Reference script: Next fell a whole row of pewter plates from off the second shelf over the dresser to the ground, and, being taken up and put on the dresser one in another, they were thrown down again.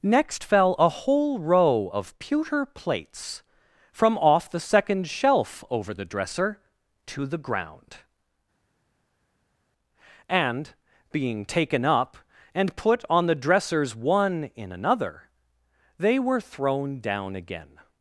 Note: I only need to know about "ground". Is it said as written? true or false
true